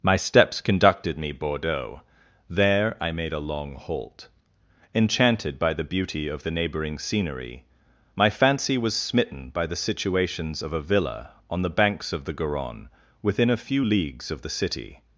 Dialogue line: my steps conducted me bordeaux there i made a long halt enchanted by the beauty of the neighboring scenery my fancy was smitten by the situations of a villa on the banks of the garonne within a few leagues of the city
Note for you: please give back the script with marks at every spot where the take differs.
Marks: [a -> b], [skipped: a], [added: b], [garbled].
my steps conducted me bordeaux there i made a long halt enchanted by the beauty of the neighboring scenery my fancy was smitten by the situations of a villa on the banks of the garonne within a few leagues of the city